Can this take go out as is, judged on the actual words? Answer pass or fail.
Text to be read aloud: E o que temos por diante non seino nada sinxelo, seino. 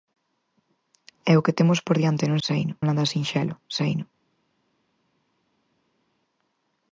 pass